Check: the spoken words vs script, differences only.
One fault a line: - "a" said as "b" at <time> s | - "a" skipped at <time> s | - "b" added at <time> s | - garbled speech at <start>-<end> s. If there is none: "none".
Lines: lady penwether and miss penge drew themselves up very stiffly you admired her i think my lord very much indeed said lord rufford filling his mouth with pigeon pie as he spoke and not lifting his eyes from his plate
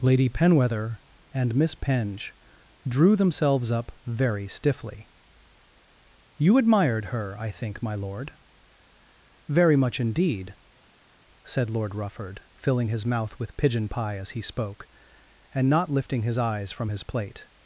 none